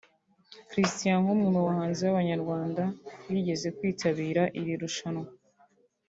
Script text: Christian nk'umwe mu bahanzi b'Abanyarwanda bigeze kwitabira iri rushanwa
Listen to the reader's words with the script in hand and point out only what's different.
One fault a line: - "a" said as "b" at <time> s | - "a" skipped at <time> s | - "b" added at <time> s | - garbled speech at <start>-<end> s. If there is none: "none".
none